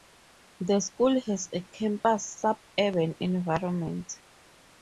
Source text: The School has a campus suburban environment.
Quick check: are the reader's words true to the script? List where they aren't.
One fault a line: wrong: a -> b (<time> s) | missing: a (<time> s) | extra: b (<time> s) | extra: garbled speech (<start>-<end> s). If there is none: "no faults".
no faults